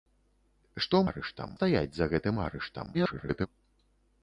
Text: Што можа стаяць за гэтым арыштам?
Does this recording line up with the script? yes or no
no